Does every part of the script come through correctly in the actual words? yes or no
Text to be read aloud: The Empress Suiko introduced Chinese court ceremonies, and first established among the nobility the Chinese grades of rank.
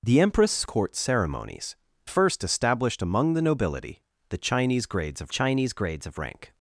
no